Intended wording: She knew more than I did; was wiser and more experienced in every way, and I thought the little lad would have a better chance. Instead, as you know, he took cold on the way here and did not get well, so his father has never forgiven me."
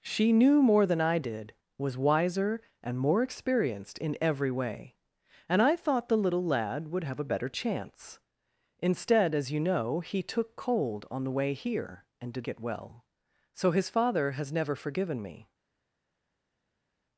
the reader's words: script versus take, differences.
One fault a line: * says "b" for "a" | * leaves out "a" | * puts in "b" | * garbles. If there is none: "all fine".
* leaves out "not"